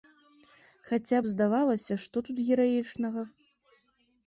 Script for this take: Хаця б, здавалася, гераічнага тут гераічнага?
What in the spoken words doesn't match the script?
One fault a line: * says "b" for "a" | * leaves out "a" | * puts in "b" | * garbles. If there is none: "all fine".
* says "што" for "гераічнага"